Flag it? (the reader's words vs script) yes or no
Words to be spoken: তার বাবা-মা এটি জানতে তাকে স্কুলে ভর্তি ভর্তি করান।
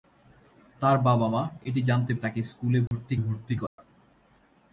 no